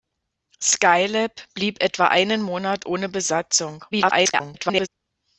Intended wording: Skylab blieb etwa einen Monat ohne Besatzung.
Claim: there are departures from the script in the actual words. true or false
true